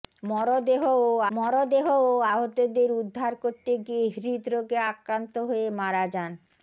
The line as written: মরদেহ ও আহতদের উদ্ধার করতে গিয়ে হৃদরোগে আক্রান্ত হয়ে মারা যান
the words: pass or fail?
fail